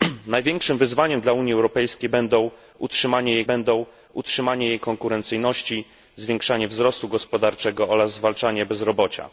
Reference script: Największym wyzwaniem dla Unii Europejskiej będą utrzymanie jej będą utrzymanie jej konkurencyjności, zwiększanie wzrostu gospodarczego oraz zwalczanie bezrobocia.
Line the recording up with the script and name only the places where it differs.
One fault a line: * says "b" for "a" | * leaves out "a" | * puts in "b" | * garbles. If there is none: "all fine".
all fine